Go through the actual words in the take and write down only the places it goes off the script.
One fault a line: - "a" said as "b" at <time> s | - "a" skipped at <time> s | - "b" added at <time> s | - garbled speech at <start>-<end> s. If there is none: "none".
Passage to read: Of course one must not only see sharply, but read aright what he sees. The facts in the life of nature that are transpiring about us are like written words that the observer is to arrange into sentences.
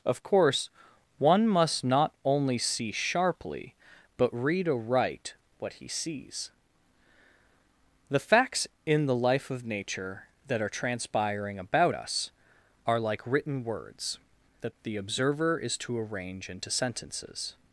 none